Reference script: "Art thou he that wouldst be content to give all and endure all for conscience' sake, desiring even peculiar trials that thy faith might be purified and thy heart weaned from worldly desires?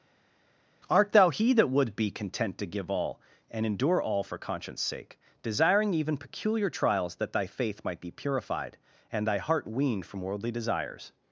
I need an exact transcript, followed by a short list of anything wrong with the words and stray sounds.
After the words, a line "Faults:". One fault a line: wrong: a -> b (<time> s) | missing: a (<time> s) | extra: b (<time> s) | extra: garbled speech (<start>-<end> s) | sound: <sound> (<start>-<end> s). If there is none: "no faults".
"Art thou he that would be content to give all and endure all for conscience' sake, desiring even peculiar trials that thy faith might be purified and thy heart weaned from worldly desires?
Faults:
wrong: wouldst -> would (1.7 s)